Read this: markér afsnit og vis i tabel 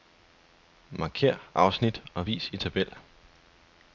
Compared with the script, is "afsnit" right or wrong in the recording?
right